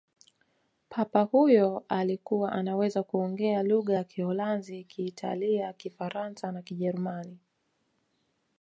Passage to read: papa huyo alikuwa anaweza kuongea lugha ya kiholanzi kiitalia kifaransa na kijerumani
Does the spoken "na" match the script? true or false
true